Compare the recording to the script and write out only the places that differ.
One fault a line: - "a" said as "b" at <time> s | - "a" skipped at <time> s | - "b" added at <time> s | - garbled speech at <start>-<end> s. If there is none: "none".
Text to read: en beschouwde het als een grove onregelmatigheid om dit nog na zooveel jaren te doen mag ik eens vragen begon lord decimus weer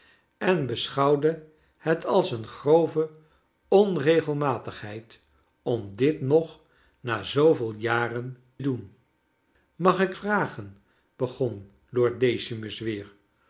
- "te" skipped at 8.4 s
- "eens" skipped at 10.1 s